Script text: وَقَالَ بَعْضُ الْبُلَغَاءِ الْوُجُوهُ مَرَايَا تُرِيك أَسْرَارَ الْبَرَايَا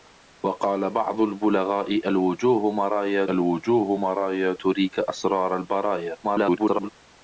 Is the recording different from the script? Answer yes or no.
yes